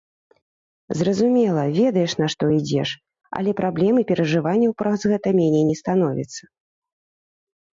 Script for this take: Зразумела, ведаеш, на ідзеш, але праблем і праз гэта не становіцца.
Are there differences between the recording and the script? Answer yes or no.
yes